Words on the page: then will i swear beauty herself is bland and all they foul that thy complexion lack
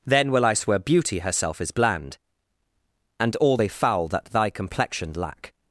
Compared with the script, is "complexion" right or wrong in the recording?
right